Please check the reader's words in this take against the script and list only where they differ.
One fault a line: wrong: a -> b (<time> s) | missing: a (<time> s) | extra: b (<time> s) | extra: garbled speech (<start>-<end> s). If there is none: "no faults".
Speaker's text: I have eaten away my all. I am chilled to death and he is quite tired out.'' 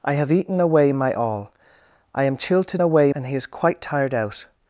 wrong: death -> away (2.8 s)